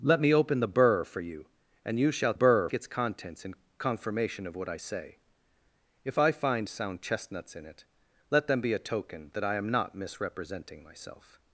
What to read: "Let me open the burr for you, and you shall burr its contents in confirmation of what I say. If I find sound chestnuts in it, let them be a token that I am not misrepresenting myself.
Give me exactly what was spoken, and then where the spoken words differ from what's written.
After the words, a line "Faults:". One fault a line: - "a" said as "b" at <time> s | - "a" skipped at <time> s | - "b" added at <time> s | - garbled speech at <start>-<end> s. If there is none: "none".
"Let me open the burr for you, and you shall burr its contents in confirmation of what I say. If I find sound chestnuts in it, let them be a token that I am not misrepresenting myself.
Faults:
none